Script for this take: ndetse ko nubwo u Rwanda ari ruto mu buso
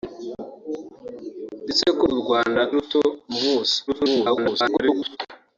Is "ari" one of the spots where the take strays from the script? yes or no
yes